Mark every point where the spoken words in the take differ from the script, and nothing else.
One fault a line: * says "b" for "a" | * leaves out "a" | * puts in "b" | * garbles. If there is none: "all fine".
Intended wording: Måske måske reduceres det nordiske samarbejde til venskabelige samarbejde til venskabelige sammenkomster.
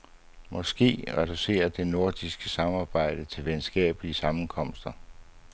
* leaves out "måske"
* leaves out "samarbejde til venskabelige"